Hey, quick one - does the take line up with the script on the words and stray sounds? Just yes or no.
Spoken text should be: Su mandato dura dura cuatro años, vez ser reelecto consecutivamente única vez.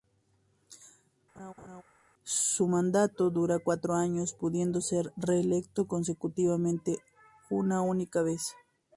no